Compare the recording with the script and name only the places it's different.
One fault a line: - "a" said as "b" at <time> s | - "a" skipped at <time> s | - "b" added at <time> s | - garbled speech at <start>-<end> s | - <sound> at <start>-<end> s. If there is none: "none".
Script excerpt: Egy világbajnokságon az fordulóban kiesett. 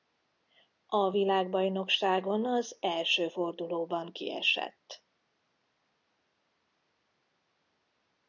- "Egy" said as "A" at 0.8 s
- "első" added at 2.8 s